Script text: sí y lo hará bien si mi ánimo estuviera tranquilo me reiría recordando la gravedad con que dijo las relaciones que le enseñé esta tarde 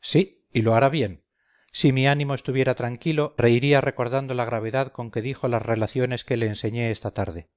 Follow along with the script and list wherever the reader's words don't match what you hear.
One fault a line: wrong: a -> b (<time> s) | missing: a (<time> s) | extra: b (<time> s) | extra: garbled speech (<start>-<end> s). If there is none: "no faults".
missing: me (3.4 s)